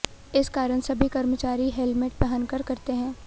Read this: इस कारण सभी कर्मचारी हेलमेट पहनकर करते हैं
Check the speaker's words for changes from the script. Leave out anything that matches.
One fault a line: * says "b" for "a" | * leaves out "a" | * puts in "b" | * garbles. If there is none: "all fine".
all fine